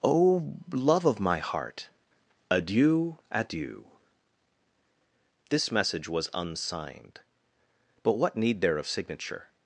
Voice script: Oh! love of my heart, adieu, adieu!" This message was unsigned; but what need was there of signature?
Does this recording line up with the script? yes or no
no